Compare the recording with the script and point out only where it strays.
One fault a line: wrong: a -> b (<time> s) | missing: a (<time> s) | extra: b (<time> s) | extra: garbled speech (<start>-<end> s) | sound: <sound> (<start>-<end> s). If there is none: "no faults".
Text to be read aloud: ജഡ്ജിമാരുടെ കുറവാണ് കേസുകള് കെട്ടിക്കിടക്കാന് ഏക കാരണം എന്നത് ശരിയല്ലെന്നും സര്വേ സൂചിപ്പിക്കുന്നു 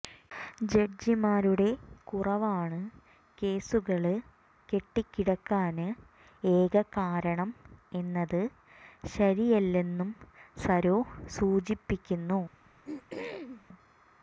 sound: throat clearing (12.5-13.7 s)